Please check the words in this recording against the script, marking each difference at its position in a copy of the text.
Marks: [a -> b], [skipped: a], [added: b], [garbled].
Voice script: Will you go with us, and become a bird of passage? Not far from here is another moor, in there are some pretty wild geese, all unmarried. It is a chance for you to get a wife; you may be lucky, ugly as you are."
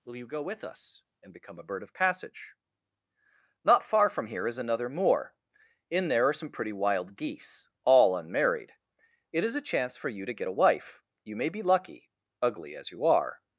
Will you go with us, and become a bird of passage? Not far from here is another moor, in there are some pretty wild geese, all unmarried. It is a chance for you to get a wife; you may be lucky, ugly as you are."